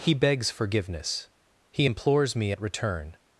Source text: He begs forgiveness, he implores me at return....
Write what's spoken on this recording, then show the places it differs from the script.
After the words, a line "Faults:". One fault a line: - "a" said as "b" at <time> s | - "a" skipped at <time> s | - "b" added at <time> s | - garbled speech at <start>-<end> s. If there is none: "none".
He begs forgiveness, he implores me at return....
Faults:
none